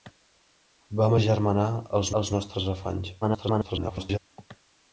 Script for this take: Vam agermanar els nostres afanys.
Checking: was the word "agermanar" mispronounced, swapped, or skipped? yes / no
no